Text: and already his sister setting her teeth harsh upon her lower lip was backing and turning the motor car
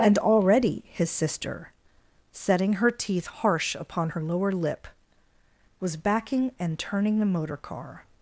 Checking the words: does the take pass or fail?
pass